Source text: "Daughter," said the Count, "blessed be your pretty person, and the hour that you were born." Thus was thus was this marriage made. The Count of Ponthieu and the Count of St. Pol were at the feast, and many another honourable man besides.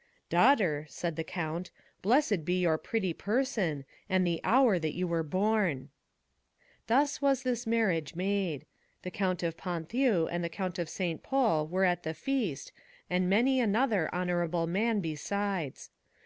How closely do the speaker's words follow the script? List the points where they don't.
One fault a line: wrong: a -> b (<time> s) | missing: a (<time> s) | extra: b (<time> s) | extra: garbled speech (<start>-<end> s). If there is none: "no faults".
missing: thus was (7.4 s)